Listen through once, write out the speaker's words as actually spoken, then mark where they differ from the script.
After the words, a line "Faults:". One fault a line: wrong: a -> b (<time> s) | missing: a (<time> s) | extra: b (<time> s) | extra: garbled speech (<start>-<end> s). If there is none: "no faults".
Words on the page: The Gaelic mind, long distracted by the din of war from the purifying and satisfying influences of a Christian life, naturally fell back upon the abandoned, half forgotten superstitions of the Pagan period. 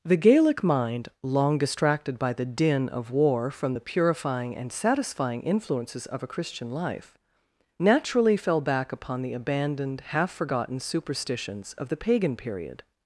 The Gaelic mind, long distracted by the din of war from the purifying and satisfying influences of a Christian life, naturally fell back upon the abandoned, half forgotten superstitions of the Pagan period.
Faults:
no faults